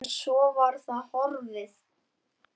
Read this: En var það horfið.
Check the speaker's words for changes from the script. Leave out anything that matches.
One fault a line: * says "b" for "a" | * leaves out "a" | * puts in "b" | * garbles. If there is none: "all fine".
* puts in "svo"